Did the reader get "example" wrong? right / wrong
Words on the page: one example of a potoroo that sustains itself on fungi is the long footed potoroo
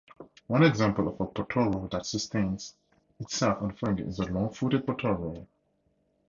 right